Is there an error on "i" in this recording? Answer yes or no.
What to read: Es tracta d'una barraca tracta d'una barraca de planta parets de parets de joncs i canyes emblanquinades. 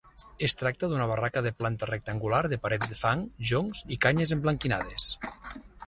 no